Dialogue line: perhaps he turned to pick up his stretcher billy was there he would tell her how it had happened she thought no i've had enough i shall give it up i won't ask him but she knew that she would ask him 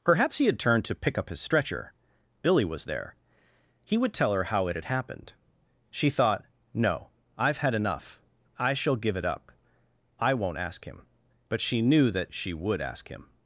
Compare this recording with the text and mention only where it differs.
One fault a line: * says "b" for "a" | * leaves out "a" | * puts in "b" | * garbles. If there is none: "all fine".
* puts in "had"